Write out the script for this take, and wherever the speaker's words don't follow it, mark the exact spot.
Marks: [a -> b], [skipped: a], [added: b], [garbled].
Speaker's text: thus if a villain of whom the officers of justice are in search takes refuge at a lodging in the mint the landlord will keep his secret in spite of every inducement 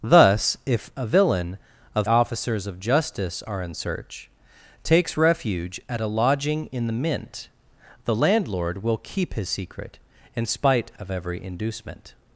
thus if a villain of [skipped: whom the] officers of justice are in search takes refuge at a lodging in the mint the landlord will keep his secret in spite of every inducement